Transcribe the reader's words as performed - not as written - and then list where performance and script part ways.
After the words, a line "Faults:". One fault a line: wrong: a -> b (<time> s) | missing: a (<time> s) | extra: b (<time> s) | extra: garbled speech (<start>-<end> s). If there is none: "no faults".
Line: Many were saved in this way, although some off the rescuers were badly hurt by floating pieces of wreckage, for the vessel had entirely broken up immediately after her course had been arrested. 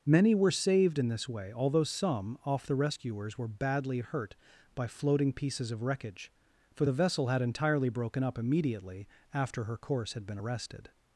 Many were saved in this way, although some off the rescuers were badly hurt by floating pieces of wreckage, for the vessel had entirely broken up immediately after her course had been arrested.
Faults:
no faults